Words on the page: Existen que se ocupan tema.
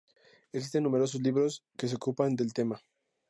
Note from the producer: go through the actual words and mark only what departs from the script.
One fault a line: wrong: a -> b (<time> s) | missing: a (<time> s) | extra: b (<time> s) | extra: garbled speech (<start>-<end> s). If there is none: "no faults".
extra: numerosos libros (0.8 s)
extra: del (2.4 s)